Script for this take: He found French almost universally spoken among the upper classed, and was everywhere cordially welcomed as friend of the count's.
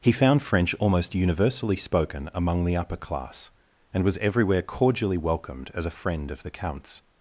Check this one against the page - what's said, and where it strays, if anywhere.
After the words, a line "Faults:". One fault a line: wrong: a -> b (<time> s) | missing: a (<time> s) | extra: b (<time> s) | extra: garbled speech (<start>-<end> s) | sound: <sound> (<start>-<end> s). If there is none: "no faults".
He found French almost universally spoken among the upper class, and was everywhere cordially welcomed as a friend of the count's.
Faults:
wrong: classed -> class (3.0 s)
extra: a (5.8 s)